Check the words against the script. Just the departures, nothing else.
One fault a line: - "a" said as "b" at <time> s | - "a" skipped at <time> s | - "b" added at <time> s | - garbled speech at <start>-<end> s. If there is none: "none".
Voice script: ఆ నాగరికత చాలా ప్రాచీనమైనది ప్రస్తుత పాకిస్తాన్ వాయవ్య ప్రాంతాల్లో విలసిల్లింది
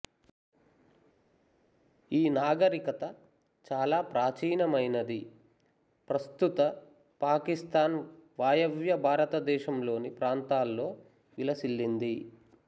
- "ఆ" said as "ఈ" at 2.1 s
- "భారతదేశంలోని" added at 9.1 s